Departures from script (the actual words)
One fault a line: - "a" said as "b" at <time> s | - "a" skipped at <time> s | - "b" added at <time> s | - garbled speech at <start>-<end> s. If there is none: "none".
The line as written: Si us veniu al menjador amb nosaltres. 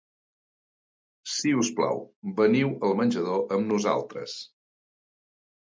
- "plau" added at 1.8 s